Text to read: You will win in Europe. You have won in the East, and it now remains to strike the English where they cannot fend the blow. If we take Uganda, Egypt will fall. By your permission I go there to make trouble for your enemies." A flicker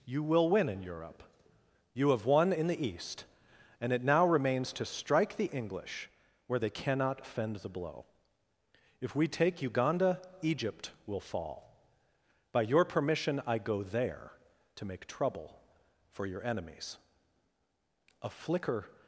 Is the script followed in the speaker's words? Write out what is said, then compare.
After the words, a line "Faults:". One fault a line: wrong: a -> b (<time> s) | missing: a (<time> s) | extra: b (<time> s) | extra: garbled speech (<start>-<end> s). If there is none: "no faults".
You will win in Europe. You have won in the East, and it now remains to strike the English where they cannot fend the blow. If we take Uganda, Egypt will fall. By your permission I go there to make trouble for your enemies." A flicker
Faults:
no faults